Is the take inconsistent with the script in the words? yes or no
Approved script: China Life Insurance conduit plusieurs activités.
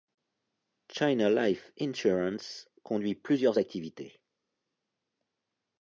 no